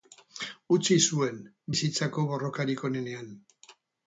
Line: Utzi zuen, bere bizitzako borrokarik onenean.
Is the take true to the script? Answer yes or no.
no